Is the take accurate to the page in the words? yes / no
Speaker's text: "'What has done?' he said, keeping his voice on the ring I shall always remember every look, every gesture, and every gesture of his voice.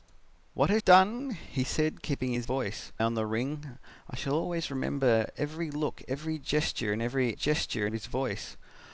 yes